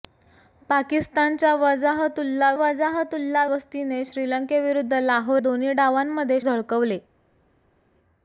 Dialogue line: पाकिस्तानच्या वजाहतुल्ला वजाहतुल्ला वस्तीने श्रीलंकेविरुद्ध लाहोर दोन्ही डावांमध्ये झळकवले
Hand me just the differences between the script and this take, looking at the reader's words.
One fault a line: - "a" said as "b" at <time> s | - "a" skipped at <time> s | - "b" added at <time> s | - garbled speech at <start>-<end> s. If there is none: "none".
none